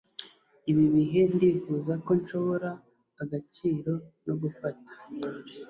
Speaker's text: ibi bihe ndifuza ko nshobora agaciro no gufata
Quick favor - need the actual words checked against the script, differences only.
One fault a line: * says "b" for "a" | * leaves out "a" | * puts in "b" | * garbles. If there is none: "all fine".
all fine